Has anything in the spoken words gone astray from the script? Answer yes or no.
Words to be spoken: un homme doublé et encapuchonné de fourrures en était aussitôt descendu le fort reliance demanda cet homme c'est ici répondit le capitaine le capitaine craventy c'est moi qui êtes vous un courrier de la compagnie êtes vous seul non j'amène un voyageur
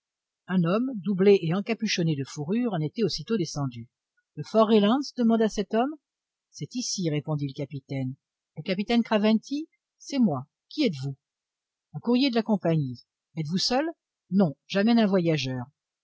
no